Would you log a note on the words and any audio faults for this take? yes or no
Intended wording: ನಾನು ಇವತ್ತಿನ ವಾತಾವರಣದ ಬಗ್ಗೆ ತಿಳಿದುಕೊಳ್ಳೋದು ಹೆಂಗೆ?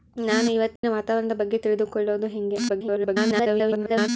yes